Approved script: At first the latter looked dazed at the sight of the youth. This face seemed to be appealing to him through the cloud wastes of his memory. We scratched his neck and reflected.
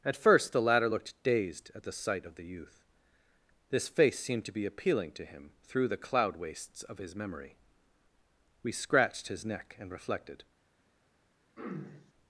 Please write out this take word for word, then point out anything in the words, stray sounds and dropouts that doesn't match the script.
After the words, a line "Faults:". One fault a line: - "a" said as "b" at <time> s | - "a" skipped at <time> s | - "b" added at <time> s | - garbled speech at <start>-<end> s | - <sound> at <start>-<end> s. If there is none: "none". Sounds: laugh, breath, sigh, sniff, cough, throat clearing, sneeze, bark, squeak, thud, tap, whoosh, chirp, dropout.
At first the latter looked dazed at the sight of the youth. This face seemed to be appealing to him through the cloud wastes of his memory. We scratched his neck and reflected.
Faults:
- throat clearing at 11.6-12.1 s